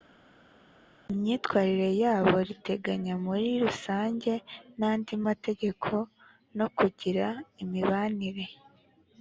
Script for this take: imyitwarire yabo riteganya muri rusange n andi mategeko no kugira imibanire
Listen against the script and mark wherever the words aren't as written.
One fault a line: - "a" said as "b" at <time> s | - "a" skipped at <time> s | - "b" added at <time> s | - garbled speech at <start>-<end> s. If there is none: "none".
none